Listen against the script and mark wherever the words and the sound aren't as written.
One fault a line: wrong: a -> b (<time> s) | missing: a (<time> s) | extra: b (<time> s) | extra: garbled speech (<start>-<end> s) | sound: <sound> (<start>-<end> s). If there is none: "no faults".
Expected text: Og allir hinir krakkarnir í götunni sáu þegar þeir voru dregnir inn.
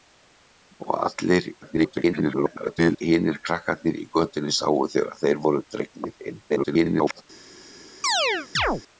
extra: garbled speech (1.6-3.0 s)
extra: garbled speech (6.5-7.2 s)
sound: chirp (8.0-8.8 s)